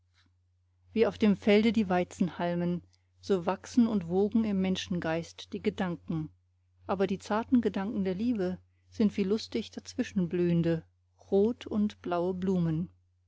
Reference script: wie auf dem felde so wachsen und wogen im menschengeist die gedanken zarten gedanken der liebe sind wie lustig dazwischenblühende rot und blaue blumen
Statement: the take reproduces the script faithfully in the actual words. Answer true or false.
false